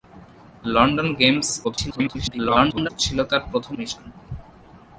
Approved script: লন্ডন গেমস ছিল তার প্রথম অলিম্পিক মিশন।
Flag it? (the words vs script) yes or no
yes